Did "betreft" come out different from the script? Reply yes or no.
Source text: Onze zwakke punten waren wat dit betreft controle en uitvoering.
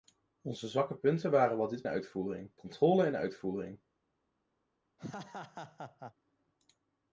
yes